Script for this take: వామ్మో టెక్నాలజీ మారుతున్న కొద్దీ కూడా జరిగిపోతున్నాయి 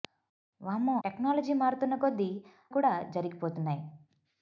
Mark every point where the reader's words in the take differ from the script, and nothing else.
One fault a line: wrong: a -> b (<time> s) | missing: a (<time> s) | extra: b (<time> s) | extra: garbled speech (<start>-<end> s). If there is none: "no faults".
no faults